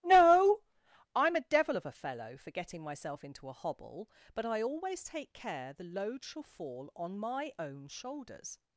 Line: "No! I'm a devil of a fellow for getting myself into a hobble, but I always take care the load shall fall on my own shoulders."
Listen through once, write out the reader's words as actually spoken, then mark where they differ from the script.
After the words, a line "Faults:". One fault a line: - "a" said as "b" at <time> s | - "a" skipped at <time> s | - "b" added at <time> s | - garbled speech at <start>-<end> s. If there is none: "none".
"No! I'm a devil of a fellow for getting myself into a hobble, but I always take care the load shall fall on my own shoulders."
Faults:
none